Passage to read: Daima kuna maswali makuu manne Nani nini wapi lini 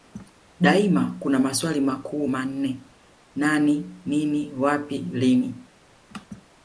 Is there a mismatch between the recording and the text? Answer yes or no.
no